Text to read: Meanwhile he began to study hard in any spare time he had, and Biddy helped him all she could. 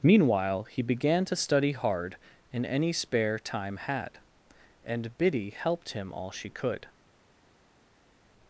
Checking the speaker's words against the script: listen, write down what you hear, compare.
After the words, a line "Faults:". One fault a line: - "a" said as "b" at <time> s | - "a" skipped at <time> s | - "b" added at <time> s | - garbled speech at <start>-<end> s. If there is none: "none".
Meanwhile he began to study hard in any spare time had, and Biddy helped him all she could.
Faults:
- "he" skipped at 3.8 s